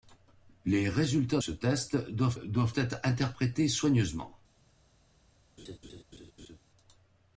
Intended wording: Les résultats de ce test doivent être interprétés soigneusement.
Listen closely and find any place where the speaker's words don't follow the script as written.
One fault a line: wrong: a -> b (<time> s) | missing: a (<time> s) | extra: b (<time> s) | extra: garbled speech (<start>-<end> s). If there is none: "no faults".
missing: de (1.4 s)
extra: doivent (2.3 s)